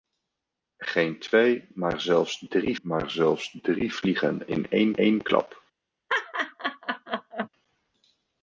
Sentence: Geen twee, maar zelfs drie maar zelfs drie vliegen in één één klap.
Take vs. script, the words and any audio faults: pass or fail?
fail